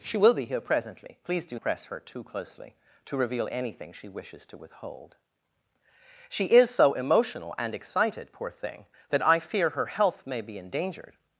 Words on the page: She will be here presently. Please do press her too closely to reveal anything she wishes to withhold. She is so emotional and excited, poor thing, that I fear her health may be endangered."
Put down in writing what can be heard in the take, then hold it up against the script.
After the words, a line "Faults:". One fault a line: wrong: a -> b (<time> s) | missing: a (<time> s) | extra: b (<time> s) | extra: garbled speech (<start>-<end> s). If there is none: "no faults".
She will be here presently. Please do press her too closely to reveal anything she wishes to withhold. She is so emotional and excited, poor thing, that I fear her health may be endangered."
Faults:
no faults